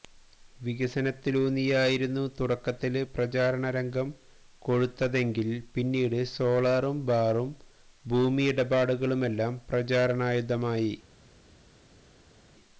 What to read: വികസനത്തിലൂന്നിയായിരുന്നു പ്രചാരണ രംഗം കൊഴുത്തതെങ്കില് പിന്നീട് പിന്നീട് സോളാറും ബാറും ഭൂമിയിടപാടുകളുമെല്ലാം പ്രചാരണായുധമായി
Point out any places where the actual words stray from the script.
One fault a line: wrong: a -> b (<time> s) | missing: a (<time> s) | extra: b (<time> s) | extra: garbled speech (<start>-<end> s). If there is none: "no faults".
extra: തുടക്കത്തില് (2.4 s)
missing: പിന്നീട് (6.2 s)